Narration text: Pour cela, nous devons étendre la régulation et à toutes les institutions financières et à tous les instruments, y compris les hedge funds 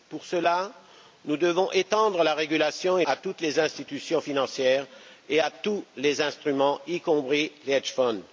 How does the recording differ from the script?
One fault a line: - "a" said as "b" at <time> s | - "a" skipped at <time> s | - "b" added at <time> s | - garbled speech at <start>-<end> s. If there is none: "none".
none